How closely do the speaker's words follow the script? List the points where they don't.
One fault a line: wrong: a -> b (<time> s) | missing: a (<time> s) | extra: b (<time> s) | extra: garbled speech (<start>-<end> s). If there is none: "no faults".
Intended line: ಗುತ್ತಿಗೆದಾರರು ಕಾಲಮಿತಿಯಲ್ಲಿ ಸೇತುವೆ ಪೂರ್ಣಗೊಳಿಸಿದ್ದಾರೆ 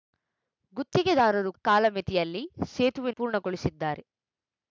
no faults